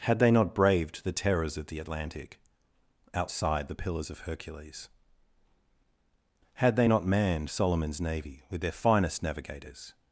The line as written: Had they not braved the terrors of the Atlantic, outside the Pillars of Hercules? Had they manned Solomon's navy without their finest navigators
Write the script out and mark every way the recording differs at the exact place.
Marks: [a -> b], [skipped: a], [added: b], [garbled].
Had they not braved the terrors of the Atlantic, outside the Pillars of Hercules? Had they [added: not] manned Solomon's navy [without -> with] their finest navigators